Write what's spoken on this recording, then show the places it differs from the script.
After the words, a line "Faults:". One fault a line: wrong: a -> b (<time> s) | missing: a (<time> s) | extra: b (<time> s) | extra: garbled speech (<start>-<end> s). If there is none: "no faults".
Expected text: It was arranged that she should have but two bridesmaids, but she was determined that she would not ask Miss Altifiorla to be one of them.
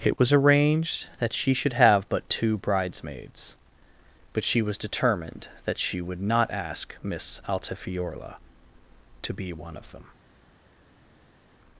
It was arranged that she should have but two bridesmaids, but she was determined that she would not ask Miss Altifiorla to be one of them.
Faults:
no faults